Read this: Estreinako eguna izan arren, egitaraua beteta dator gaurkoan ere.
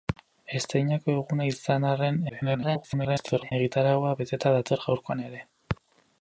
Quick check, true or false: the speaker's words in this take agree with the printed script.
false